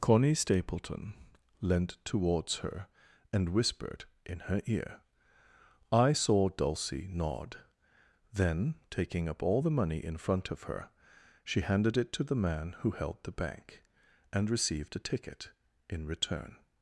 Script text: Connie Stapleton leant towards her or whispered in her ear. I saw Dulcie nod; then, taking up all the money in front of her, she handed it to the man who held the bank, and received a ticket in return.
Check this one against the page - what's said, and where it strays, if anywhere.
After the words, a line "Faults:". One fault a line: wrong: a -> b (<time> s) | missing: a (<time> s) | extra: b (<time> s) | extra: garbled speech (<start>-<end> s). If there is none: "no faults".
Connie Stapleton leant towards her and whispered in her ear. I saw Dulcie nod; then, taking up all the money in front of her, she handed it to the man who held the bank, and received a ticket in return.
Faults:
wrong: or -> and (3.3 s)